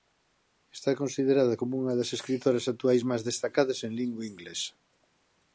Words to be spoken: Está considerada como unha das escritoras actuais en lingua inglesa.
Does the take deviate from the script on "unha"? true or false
false